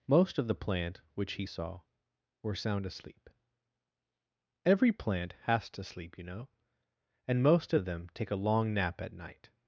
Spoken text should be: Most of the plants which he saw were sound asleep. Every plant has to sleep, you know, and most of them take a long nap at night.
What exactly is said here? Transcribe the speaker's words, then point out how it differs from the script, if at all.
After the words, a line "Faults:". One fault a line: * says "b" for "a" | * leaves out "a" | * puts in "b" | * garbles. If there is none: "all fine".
Most of the plant which he saw were sound asleep. Every plant has to sleep, you know, and most of them take a long nap at night.
Faults:
* says "plant" for "plants"